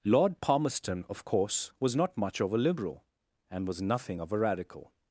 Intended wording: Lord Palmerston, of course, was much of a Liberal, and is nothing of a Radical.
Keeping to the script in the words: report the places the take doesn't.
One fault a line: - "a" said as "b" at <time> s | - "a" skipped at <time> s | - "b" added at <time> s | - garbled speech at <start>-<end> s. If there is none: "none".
- "not" added at 1.9 s
- "is" said as "was" at 3.7 s